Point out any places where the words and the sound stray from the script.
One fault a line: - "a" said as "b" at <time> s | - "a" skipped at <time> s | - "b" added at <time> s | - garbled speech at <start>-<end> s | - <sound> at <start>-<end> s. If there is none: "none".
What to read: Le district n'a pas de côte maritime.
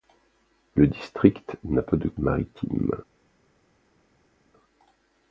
- "côte" skipped at 2.1 s